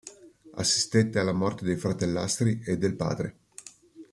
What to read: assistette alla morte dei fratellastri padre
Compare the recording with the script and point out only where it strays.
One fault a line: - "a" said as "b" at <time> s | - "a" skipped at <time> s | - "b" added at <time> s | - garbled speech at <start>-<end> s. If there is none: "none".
- "e del" added at 2.6 s